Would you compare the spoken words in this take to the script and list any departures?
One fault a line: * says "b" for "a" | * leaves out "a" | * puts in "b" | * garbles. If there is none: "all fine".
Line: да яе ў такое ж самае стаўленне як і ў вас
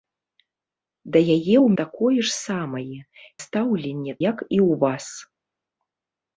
all fine